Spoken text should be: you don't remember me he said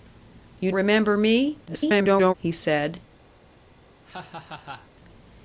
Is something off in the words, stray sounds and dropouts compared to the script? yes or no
yes